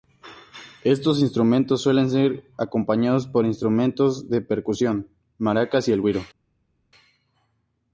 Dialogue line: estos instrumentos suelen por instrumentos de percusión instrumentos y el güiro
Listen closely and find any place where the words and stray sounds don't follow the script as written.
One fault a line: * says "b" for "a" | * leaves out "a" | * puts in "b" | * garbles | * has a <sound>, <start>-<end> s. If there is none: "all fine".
* puts in "ser acompañados"
* says "maracas" for "instrumentos"